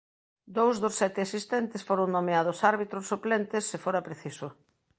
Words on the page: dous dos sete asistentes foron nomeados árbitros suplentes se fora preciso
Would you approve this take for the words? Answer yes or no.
yes